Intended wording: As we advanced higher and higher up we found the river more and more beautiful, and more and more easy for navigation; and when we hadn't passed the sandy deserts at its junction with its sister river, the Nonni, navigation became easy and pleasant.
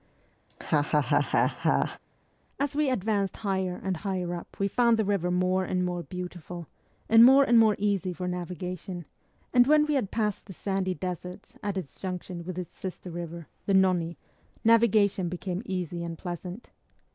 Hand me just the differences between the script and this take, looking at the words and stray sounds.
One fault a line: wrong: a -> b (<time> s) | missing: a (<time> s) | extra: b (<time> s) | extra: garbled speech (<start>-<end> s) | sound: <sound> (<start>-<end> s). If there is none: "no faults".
sound: laugh (0.5-2.0 s)
wrong: hadn't -> had (10.0 s)